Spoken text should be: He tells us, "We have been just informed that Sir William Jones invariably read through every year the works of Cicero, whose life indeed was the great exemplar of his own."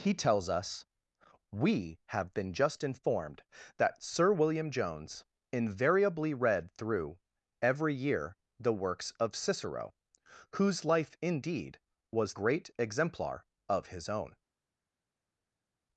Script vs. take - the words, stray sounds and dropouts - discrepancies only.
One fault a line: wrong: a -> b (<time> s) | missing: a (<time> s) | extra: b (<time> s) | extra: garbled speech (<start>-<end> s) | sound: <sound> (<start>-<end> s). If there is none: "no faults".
missing: the (12.3 s)